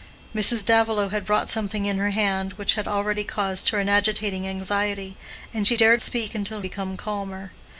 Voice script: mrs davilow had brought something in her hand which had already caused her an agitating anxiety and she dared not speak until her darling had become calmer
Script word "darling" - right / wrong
wrong